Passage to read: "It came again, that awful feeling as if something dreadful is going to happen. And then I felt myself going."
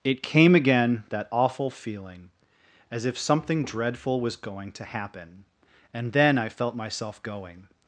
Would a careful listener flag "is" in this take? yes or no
yes